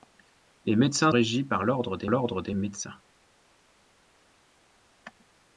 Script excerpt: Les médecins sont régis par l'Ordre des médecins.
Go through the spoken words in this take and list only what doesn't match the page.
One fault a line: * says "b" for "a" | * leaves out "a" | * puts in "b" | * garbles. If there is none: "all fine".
* leaves out "sont"
* puts in "l'Ordre des"